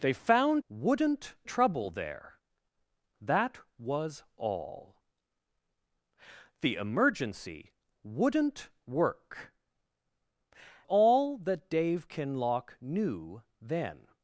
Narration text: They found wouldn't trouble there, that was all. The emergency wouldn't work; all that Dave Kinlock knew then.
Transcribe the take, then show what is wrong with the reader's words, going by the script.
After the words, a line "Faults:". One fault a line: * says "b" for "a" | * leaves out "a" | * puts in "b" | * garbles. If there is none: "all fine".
They found wouldn't trouble there, that was all. The emergency wouldn't work; all that Dave Kinlock knew then.
Faults:
all fine